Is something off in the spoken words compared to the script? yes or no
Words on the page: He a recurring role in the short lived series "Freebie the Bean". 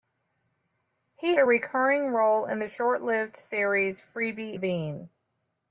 no